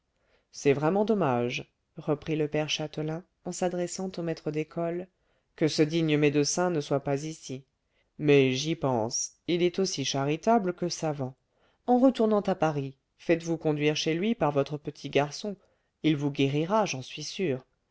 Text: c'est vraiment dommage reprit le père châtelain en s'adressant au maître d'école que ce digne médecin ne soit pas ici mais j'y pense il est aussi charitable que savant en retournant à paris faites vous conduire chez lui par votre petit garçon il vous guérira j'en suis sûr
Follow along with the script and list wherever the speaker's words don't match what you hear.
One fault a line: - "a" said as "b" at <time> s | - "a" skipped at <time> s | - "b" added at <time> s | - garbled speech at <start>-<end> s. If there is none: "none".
none